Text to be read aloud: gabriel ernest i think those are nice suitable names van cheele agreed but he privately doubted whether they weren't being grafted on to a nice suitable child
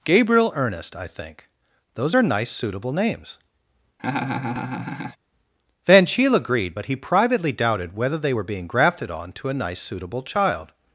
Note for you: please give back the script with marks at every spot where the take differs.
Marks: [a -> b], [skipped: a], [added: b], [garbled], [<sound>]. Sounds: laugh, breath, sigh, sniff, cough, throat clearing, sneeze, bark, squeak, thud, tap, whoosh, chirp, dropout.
gabriel ernest i think those are nice suitable names [laugh] van cheele agreed but he privately doubted whether they [weren't -> were] being grafted on to a nice suitable child